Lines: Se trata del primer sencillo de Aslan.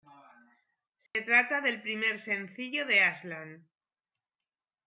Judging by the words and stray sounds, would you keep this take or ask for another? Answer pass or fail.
fail